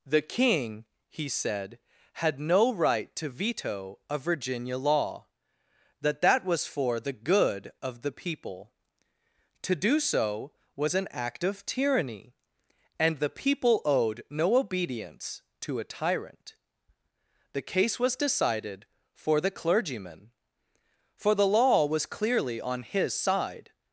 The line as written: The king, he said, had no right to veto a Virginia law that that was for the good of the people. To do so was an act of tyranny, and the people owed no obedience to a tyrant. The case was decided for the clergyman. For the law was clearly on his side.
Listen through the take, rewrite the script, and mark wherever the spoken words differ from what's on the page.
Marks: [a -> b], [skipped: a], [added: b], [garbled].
The king, he said, had no right to veto a Virginia law that that was for the good of the people. To do so was an act of tyranny, and the people owed no obedience to a tyrant. The case was decided for the clergyman. For the law was clearly on his side.